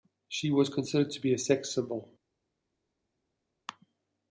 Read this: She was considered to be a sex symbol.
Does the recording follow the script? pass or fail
pass